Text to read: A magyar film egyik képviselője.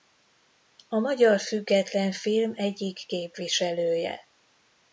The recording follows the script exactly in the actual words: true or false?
false